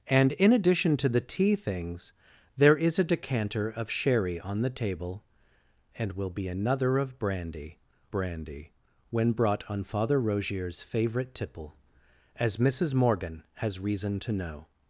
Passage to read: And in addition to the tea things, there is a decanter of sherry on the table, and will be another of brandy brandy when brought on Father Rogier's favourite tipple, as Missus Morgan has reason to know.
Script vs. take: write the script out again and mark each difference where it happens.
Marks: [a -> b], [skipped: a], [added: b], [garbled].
And in addition to the tea things, there is a decanter of sherry on the table, and will be another of brandy brandy when brought on Father Rogier's favourite tipple, as Missus Morgan has reason to know.